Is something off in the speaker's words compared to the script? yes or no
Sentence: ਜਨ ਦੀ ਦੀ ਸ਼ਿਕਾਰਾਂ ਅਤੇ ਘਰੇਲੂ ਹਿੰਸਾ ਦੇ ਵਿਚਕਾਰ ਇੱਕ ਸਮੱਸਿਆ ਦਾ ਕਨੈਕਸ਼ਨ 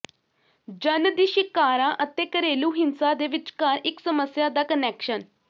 yes